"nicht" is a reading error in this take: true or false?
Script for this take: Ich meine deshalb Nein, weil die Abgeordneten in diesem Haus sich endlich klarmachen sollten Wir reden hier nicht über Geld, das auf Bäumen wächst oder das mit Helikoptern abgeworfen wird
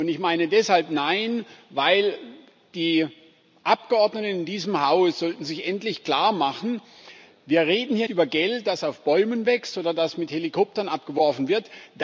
true